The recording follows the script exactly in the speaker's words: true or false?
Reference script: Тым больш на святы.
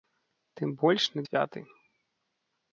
true